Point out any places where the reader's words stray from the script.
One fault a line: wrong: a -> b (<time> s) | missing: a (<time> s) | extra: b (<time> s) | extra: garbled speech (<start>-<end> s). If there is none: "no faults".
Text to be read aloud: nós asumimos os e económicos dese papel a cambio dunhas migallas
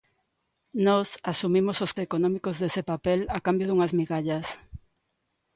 no faults